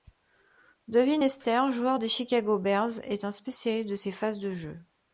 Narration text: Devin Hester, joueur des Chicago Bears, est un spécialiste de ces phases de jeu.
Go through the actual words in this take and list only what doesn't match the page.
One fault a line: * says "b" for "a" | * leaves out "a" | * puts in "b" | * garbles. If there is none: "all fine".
all fine